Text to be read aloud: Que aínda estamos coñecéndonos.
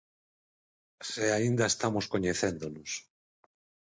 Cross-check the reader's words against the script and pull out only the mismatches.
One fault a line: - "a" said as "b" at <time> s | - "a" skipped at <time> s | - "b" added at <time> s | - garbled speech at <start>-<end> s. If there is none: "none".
- "Que" said as "Se" at 1.1 s